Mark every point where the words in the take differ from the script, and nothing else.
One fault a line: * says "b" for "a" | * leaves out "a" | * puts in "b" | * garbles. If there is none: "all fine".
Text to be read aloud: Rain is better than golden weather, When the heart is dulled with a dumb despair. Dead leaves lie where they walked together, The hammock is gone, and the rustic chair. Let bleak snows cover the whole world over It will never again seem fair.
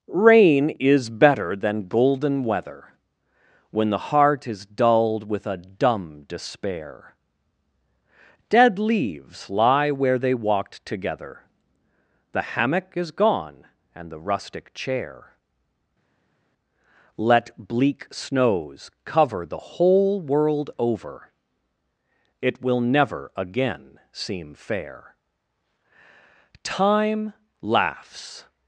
* puts in "Time laughs"